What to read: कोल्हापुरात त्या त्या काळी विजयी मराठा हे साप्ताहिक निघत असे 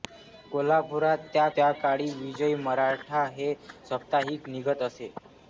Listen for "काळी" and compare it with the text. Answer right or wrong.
right